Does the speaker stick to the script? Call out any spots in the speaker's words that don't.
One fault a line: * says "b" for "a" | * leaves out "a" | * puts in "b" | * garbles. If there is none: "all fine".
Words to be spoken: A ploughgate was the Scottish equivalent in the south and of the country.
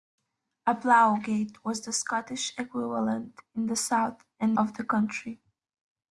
all fine